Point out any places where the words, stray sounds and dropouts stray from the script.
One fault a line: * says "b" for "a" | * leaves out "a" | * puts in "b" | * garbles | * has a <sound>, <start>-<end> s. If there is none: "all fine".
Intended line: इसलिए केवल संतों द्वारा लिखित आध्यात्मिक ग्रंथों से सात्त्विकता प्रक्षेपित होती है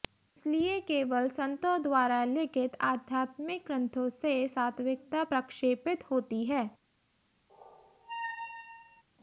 * has a squeak, 7.5-9.0 s